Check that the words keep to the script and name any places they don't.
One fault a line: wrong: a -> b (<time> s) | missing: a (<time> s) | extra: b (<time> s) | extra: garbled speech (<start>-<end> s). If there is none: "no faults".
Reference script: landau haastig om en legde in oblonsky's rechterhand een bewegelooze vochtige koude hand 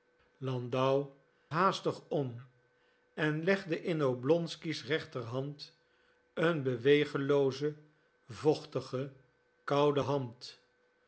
no faults